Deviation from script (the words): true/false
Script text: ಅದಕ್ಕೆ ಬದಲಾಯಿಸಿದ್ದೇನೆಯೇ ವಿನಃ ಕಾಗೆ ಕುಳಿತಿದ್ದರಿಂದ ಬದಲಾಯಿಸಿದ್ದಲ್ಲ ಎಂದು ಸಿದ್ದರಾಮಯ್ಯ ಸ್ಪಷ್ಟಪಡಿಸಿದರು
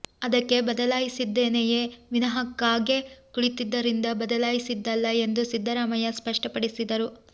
false